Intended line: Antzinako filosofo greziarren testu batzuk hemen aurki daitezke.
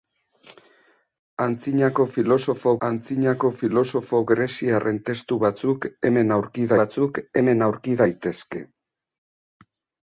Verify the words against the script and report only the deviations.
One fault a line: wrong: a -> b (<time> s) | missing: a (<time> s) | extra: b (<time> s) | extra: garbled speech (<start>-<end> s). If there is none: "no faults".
extra: antzinako filosofo (2.9 s)
extra: batzuk hemen aurki (6.8 s)